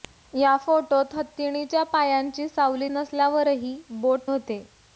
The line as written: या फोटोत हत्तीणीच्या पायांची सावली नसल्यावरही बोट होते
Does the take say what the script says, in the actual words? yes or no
yes